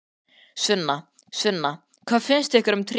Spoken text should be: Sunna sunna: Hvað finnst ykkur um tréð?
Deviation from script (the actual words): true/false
false